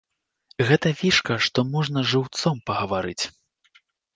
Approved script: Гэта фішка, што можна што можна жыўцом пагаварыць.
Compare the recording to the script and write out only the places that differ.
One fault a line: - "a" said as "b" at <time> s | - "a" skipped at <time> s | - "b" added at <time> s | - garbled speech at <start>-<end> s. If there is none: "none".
- "што можна" skipped at 2.0 s